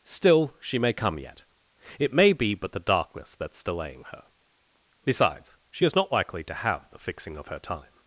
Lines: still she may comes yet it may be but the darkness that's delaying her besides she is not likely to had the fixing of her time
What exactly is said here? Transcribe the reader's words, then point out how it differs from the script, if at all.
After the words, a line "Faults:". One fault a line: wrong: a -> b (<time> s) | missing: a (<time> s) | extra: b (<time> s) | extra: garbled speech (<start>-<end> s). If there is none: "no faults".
still she may come yet it may be but the darkness that's delaying her besides she is not likely to have the fixing of her time
Faults:
wrong: comes -> come (0.9 s)
wrong: had -> have (6.5 s)